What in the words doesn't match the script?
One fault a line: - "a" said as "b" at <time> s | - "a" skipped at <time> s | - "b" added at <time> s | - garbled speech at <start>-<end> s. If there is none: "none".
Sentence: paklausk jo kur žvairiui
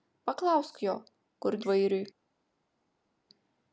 none